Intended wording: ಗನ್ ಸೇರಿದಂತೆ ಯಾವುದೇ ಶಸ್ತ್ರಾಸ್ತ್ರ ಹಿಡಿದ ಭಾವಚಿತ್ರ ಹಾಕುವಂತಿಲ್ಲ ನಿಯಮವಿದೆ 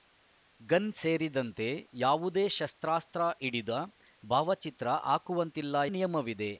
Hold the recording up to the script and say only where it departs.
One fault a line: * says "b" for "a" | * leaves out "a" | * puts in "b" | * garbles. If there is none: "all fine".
all fine